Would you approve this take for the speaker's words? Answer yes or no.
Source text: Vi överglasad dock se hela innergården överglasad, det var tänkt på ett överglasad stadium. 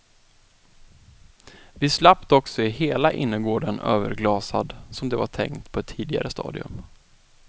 no